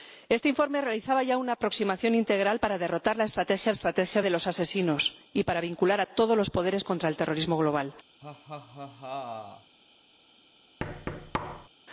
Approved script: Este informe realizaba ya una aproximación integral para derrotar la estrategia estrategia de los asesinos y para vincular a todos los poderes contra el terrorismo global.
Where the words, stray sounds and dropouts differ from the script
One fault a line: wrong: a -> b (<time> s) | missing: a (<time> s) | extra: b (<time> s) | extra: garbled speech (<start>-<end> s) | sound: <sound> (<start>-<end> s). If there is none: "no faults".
sound: laugh (8.2-9.8 s)
sound: thud (10.8-11.7 s)